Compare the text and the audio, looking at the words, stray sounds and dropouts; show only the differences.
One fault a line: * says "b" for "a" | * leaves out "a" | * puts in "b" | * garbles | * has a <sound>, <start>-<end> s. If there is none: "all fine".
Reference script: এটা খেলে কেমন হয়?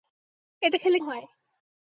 * leaves out "কেমন"